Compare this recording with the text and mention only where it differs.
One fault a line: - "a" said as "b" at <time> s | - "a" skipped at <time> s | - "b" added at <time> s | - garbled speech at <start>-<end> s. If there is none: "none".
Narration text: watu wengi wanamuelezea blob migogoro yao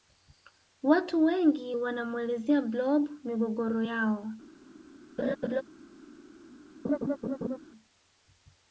none